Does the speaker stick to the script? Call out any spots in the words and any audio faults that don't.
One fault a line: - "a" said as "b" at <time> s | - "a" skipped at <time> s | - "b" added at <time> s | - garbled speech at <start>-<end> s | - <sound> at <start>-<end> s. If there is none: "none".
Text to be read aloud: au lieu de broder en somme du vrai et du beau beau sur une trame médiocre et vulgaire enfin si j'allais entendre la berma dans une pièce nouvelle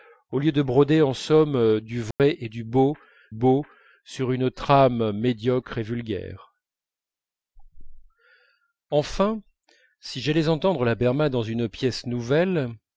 - dropout at 2.1-2.2 s